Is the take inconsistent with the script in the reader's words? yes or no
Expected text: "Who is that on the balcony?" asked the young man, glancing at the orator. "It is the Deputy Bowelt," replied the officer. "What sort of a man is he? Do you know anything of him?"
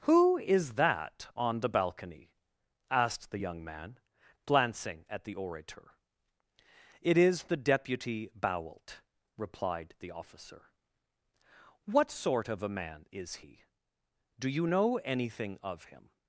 no